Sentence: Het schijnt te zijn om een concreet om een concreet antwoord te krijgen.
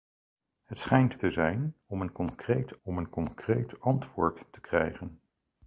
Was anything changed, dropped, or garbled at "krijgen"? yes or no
no